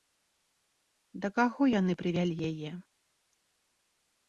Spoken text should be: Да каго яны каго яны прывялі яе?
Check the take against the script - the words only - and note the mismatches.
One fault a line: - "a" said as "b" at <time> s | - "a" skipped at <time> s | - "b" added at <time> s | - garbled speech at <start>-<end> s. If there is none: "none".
- "каго яны" skipped at 1.9 s